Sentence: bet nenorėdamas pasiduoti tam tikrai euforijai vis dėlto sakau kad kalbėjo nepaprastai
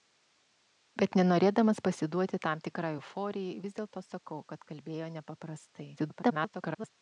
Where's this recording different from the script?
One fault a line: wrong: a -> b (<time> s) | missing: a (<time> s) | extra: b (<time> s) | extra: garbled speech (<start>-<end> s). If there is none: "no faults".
extra: garbled speech (6.0-6.9 s)